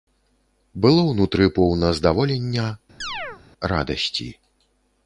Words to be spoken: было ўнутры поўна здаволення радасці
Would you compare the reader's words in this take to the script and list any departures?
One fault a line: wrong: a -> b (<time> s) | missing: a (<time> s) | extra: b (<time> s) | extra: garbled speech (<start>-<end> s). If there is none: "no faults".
no faults